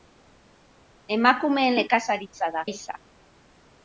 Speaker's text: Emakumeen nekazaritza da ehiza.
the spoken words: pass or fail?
pass